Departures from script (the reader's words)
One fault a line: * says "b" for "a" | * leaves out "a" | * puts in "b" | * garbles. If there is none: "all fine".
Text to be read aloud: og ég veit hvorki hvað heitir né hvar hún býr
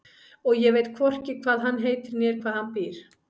* puts in "hann"
* says "hann" for "hún"